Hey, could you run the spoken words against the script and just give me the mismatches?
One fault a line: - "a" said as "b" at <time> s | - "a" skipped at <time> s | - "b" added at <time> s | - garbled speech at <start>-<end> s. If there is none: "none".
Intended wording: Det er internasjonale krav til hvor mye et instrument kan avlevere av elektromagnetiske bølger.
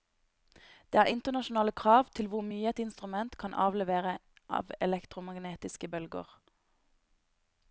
none